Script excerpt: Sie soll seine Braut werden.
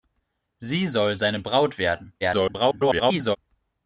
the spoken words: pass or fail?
fail